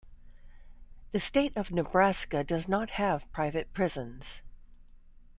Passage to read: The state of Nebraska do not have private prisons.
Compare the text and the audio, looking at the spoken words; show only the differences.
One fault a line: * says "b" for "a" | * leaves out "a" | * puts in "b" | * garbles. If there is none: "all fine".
* says "does" for "do"